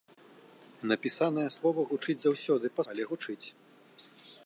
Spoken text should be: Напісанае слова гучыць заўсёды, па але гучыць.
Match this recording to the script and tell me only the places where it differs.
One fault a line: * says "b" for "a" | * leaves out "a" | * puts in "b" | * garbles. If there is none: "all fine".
all fine